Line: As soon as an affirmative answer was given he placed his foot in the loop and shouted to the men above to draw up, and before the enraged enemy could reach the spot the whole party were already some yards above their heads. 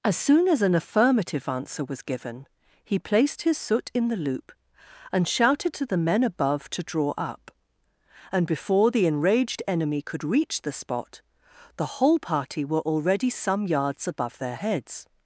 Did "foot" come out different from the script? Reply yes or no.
yes